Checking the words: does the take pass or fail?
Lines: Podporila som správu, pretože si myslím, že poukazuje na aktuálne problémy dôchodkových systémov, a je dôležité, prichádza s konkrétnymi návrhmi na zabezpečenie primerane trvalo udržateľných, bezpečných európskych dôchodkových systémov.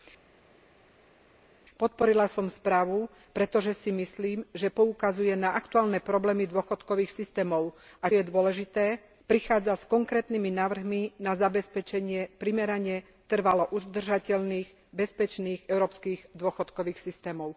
pass